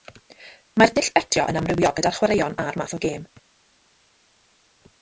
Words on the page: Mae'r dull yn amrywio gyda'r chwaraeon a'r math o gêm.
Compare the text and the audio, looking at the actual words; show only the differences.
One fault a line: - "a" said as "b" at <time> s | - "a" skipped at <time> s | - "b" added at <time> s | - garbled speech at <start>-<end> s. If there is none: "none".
- "betio" added at 1.2 s